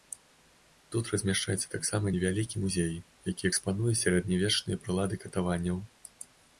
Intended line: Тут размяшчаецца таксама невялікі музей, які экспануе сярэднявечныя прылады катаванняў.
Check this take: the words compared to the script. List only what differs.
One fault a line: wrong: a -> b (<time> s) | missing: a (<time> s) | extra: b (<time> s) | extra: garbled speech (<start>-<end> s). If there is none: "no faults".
no faults